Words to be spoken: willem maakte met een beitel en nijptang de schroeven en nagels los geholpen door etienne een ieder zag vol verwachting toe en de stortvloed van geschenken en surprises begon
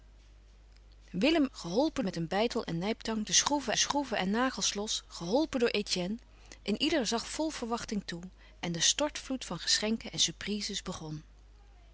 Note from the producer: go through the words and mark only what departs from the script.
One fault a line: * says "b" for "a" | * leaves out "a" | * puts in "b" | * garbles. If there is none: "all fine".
* says "geholpen" for "maakte"
* puts in "schroeven"